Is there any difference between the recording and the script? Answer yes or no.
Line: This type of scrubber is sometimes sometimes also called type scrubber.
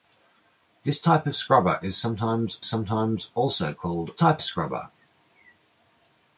no